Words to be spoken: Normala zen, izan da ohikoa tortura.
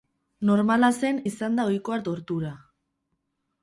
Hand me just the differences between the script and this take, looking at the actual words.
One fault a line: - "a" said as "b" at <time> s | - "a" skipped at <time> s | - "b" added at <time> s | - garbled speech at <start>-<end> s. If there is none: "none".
none